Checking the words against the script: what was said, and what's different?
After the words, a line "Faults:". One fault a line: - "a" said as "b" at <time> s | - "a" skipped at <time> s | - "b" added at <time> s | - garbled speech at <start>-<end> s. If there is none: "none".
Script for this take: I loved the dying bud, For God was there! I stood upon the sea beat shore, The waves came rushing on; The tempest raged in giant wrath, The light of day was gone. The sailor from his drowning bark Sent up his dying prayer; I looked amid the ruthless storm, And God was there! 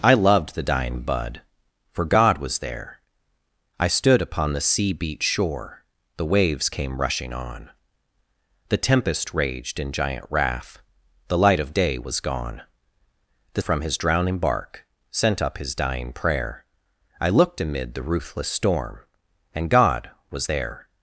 I loved the dying bud, For God was there! I stood upon the sea beat shore, The waves came rushing on; The tempest raged in giant wrath, The light of day was gone. The from his drowning bark Sent up his dying prayer; I looked amid the ruthless storm, And God was there!
Faults:
- "sailor" skipped at 13.6 s